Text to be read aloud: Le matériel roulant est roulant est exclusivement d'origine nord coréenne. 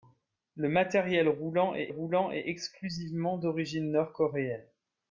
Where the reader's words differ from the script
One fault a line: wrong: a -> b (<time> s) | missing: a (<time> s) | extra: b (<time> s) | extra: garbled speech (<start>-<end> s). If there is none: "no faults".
no faults